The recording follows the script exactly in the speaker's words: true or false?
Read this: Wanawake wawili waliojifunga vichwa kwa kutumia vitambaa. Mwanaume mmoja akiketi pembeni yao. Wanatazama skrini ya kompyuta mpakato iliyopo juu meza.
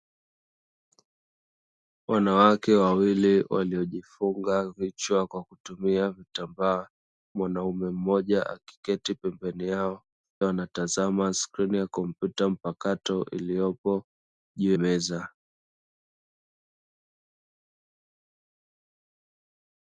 true